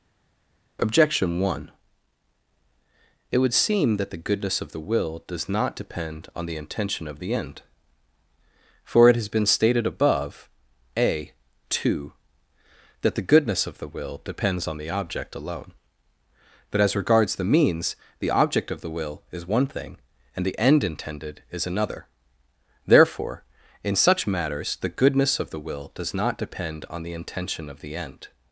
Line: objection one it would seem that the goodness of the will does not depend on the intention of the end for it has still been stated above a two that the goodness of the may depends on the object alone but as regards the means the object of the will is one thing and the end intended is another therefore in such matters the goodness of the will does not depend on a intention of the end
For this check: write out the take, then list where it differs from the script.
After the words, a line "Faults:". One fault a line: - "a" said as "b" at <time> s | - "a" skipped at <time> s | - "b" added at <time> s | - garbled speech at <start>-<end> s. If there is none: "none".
objection one it would seem that the goodness of the will does not depend on the intention of the end for it has been stated above a two that the goodness of the will depends on the object alone but as regards the means the object of the will is one thing and the end intended is another therefore in such matters the goodness of the will does not depend on the intention of the end
Faults:
- "still" skipped at 9.3 s
- "may" said as "will" at 13.9 s
- "a" said as "the" at 27.0 s